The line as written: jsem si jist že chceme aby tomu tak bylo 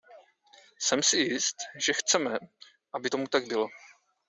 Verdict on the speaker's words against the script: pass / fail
pass